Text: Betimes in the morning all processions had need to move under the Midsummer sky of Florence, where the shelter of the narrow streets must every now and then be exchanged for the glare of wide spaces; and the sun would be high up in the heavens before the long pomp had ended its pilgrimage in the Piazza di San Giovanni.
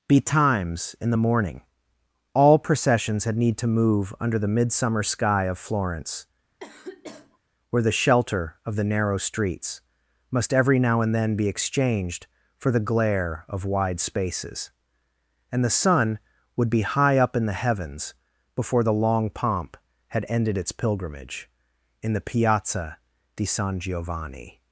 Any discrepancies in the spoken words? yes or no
no